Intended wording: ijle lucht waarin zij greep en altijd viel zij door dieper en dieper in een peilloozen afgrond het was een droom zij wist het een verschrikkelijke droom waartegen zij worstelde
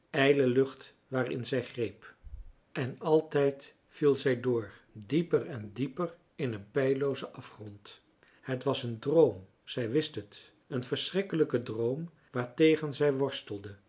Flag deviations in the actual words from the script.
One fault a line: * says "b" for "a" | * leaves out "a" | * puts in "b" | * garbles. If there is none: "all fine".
all fine